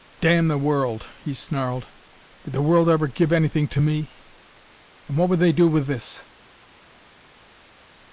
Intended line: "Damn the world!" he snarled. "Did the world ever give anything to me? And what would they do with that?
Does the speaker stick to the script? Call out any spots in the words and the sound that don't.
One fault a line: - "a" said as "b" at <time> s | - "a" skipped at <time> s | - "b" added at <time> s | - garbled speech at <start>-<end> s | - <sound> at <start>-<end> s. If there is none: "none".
- "that" said as "this" at 5.9 s